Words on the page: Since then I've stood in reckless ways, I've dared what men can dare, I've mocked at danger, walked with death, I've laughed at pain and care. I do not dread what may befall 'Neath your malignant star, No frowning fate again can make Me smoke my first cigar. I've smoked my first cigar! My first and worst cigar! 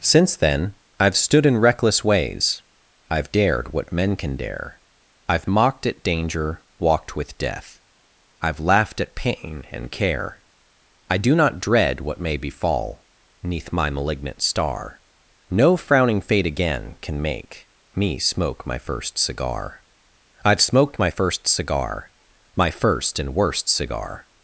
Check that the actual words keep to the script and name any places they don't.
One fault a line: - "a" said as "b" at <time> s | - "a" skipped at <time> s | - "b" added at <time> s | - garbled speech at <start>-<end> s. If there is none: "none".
- "your" said as "my" at 13.7 s